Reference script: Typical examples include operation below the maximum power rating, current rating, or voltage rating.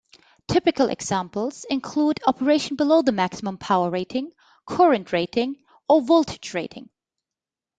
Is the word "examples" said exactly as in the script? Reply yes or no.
yes